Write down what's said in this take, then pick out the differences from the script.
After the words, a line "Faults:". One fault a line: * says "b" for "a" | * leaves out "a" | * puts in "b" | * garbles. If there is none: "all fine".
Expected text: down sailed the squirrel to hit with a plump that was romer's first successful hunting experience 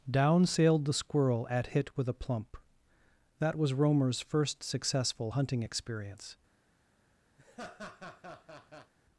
down sailed the squirrel at hit with a plump that was romer's first successful hunting experience
Faults:
* says "at" for "to"